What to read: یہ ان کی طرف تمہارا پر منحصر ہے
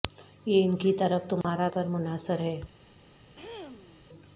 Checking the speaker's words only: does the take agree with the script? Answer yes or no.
yes